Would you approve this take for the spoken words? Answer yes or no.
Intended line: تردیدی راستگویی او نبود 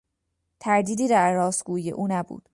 no